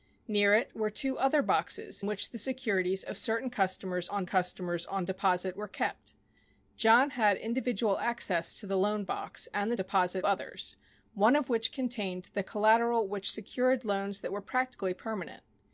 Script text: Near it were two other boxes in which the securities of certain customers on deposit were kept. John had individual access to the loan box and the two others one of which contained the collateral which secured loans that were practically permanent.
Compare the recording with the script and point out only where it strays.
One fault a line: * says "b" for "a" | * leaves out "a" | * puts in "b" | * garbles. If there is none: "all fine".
* leaves out "in"
* puts in "customers on"
* says "deposit" for "two"